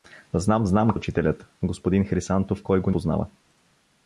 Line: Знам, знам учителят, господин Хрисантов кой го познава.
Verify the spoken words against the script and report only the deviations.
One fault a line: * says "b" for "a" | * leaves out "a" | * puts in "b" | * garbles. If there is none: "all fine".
all fine